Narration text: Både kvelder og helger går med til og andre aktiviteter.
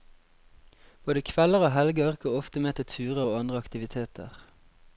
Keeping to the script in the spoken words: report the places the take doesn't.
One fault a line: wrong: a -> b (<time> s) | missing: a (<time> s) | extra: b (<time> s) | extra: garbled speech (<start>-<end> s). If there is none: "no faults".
extra: ofte (2.4 s)
extra: turer (2.9 s)